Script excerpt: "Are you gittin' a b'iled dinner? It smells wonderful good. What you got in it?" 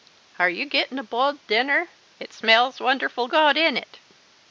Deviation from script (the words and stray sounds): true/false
true